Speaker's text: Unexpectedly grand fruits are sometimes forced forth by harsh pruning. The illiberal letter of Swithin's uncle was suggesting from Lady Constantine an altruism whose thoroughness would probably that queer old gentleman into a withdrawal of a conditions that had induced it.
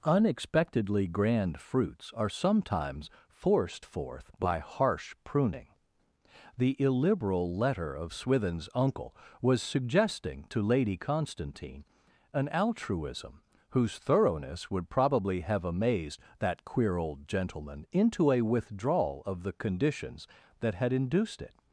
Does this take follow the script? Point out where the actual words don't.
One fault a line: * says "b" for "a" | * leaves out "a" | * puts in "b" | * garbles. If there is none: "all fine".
* says "to" for "from"
* puts in "have amazed"
* says "the" for "a"